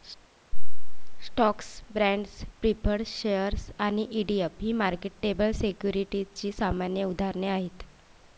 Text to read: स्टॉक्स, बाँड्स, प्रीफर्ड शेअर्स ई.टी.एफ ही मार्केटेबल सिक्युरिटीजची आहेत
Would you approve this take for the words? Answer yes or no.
no